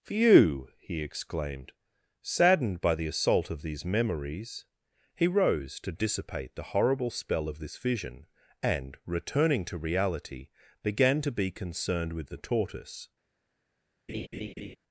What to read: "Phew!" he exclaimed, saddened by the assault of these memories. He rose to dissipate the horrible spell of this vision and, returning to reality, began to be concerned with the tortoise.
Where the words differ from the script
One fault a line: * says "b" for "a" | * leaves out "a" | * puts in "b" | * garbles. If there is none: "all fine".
all fine